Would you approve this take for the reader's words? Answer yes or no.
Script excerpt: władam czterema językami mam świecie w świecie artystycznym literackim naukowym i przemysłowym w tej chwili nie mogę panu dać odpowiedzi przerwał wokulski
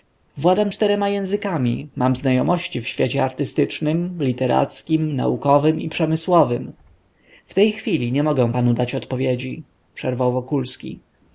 no